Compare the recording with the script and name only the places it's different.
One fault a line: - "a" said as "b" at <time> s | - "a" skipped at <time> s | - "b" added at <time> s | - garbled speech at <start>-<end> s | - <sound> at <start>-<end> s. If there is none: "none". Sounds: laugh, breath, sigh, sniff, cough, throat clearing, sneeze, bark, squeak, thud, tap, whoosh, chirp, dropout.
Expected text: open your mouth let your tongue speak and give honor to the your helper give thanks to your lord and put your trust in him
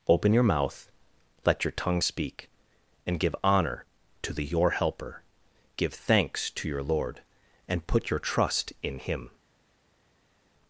none